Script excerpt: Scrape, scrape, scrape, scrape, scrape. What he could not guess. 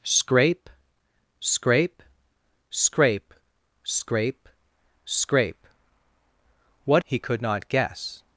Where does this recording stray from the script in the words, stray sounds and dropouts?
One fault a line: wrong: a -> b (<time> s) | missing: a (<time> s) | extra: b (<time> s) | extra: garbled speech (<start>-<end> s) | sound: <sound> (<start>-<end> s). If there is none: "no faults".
no faults